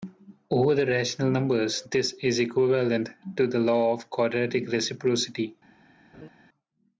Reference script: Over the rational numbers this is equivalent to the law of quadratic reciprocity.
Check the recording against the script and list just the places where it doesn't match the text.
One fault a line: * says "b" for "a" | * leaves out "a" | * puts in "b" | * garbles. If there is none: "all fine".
all fine